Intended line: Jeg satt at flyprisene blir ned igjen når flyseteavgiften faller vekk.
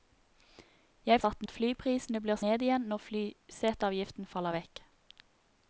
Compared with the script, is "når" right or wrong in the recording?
right